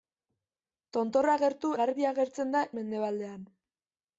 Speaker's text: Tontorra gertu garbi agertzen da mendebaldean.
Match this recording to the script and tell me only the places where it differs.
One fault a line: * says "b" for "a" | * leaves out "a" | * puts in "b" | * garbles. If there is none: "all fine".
all fine